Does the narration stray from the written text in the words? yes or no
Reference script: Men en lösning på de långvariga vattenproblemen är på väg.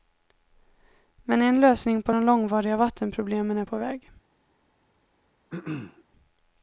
no